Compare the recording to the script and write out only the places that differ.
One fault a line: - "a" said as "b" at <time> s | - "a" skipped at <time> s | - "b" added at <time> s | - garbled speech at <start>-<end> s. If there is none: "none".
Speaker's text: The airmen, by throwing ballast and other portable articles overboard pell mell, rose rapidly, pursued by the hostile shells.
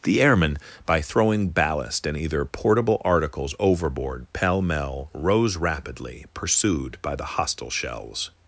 - "other" said as "either" at 2.2 s